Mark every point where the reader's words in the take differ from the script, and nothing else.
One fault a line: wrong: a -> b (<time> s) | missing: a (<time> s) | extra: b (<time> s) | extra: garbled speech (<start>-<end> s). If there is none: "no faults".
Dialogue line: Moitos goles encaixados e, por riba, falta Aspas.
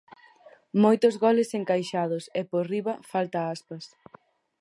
no faults